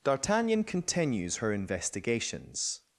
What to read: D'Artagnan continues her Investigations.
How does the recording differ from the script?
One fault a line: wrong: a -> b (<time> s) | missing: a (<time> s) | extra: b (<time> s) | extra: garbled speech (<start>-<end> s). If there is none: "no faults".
no faults